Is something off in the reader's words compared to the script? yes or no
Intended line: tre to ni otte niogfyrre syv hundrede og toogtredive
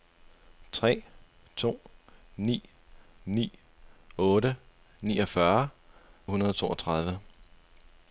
yes